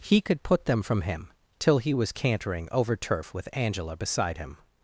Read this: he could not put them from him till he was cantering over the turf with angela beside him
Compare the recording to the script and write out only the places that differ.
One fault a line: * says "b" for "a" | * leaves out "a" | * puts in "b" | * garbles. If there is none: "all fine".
* leaves out "not"
* leaves out "the"